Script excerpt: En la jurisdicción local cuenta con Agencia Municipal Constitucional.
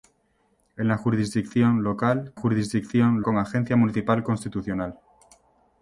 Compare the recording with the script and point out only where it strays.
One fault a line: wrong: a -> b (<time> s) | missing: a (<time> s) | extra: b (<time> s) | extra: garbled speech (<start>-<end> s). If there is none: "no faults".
wrong: cuenta -> jurisdicción (2.4 s)